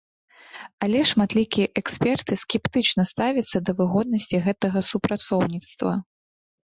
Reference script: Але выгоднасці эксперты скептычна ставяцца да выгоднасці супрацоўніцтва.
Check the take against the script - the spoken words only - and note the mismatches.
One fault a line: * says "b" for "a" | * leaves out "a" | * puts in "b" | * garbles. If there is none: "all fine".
* says "шматлікія" for "выгоднасці"
* puts in "гэтага"